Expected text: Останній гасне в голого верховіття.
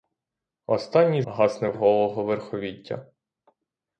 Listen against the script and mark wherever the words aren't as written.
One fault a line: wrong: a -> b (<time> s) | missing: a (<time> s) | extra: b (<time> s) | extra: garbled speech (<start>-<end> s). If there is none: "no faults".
no faults